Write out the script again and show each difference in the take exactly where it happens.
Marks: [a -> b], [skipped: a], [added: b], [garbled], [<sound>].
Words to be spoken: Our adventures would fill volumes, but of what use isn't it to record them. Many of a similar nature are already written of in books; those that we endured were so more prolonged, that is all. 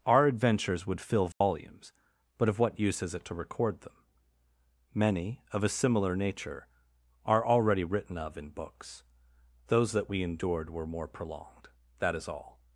Our adventures would fill volumes, [dropout] but of what use [isn't -> is] it to record them. Many of a similar nature are already written of in books; those that we endured were [skipped: so] more prolonged, that is all.